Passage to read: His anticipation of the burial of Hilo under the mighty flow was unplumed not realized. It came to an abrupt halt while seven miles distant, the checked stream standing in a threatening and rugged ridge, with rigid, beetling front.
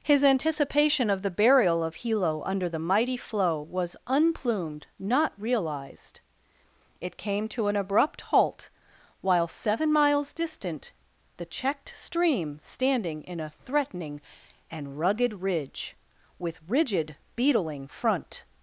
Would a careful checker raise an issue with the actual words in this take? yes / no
no